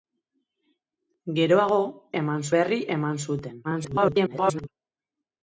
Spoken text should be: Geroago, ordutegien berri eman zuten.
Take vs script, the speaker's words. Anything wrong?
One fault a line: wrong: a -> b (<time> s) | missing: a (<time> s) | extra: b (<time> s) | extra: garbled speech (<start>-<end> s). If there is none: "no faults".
wrong: ordutegien -> eman (2.2 s)
extra: garbled speech (3.6-4.7 s)